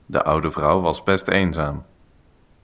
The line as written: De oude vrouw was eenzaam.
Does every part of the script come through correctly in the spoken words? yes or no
no